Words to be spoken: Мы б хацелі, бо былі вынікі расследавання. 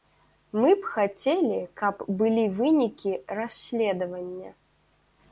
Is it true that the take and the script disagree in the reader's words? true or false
true